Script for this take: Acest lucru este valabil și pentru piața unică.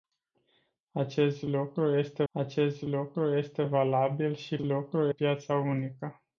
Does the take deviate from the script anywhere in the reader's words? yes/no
yes